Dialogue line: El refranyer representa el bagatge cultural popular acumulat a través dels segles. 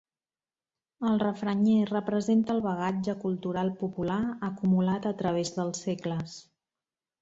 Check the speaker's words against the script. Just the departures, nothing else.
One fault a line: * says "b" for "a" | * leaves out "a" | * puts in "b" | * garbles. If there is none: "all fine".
all fine